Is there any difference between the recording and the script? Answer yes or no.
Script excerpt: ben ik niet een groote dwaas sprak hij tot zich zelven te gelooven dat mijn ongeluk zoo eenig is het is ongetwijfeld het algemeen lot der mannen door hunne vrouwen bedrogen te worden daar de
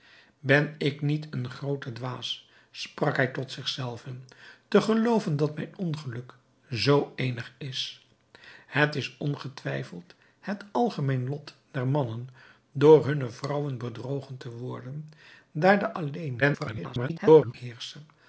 yes